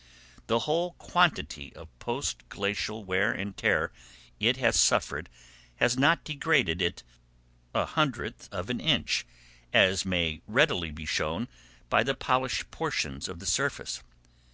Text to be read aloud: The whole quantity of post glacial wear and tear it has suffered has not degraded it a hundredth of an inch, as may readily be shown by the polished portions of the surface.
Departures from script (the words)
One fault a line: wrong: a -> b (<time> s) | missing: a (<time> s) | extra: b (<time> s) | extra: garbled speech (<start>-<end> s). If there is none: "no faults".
no faults